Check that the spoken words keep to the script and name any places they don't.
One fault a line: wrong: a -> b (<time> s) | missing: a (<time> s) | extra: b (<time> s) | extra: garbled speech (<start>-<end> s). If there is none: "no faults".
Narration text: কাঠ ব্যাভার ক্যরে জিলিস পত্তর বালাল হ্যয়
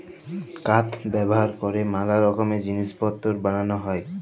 extra: ম্যালা রকমের (1.9 s)